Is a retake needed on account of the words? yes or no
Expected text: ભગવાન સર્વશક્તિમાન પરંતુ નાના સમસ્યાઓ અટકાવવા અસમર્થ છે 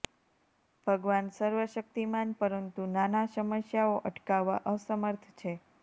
no